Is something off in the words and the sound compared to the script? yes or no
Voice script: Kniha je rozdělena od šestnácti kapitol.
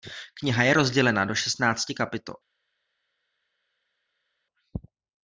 yes